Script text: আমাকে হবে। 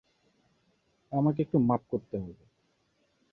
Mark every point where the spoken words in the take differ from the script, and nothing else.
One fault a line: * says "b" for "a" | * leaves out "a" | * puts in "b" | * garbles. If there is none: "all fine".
* puts in "একটু মাপ করতে"